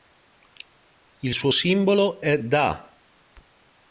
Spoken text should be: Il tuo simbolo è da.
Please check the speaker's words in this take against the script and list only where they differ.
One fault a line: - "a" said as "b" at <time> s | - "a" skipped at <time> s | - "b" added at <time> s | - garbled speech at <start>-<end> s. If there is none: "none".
- "tuo" said as "suo" at 1.3 s